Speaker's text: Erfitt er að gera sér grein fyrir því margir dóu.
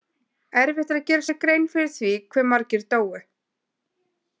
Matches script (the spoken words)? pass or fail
fail